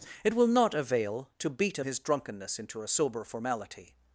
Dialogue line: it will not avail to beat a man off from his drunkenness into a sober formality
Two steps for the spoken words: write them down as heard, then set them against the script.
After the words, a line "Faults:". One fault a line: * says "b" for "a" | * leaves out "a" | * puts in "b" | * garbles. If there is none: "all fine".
it will not avail to beat a his drunkenness into a sober formality
Faults:
* leaves out "man off from"